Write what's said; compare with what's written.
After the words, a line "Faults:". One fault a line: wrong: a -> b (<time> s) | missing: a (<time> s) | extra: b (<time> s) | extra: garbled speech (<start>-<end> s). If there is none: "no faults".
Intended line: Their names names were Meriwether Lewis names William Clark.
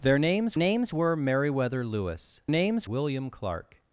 Their names names were Meriwether Lewis names William Clark.
Faults:
no faults